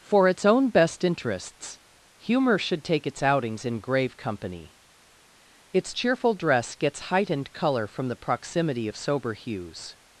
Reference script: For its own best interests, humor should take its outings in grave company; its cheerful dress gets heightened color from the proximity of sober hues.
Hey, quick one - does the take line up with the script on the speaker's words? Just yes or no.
yes